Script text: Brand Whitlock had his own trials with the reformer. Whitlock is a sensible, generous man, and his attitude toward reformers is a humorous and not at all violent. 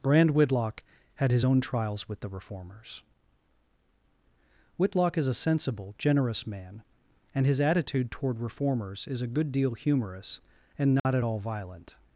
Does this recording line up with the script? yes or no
no